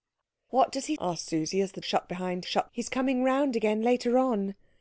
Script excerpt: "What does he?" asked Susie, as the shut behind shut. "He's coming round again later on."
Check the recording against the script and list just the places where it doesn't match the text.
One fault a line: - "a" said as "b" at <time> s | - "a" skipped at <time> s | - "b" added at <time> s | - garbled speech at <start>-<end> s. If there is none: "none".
none